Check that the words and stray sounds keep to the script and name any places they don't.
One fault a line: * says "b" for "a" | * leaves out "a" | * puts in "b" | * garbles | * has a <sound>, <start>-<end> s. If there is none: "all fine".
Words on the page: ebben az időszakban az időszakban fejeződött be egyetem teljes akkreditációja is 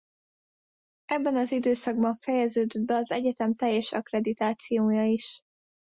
* leaves out "az időszakban"
* puts in "az"